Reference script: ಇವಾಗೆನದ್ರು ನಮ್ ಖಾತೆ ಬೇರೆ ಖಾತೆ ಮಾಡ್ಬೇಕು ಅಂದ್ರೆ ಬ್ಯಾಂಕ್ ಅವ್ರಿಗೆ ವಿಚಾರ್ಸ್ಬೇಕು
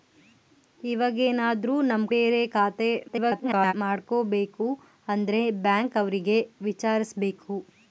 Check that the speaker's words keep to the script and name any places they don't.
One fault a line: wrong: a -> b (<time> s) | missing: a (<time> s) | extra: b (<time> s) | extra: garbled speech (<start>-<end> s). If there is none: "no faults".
missing: ಖಾತೆ (2.0 s)
extra: garbled speech (3.1-3.7 s)